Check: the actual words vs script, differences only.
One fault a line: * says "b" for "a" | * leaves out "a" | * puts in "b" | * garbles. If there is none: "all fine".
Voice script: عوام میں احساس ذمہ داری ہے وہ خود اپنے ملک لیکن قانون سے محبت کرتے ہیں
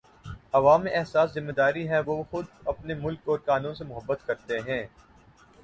* says "اور" for "لیکن"